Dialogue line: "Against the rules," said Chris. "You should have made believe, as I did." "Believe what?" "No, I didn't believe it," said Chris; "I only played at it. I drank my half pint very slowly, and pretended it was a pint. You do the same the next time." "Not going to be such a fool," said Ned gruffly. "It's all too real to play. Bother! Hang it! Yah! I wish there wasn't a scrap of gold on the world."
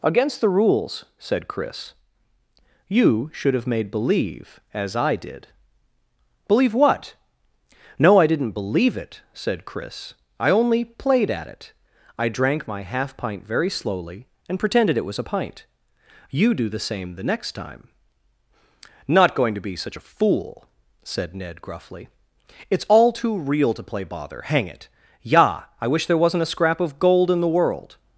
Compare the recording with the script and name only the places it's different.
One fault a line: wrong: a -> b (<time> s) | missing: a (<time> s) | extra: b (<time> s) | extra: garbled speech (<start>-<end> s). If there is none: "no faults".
wrong: on -> in (27.3 s)